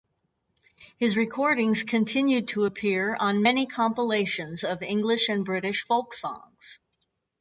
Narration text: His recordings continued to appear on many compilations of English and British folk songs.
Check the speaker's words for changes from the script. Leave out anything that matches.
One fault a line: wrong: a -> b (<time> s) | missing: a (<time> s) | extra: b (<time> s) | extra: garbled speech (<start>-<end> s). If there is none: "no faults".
no faults